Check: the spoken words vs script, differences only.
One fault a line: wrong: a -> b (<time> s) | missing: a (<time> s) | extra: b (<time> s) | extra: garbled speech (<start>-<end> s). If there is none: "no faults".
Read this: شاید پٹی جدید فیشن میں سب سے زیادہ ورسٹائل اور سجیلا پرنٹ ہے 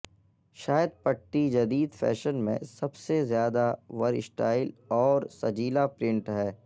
no faults